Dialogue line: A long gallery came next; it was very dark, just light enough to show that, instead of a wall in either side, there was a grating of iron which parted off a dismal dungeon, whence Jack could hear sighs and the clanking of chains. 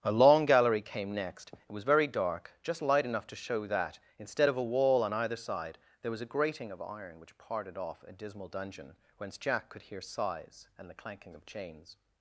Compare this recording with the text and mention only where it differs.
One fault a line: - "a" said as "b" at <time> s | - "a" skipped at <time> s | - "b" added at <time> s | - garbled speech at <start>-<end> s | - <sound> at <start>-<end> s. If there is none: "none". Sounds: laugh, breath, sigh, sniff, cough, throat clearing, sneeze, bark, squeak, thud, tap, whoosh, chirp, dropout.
- "in" said as "on" at 5.0 s